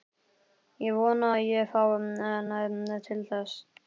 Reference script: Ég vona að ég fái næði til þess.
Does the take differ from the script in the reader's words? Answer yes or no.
no